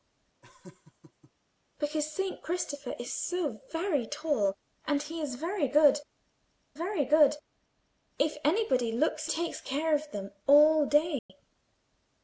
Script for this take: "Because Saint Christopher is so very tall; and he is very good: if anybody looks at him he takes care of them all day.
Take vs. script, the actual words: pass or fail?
fail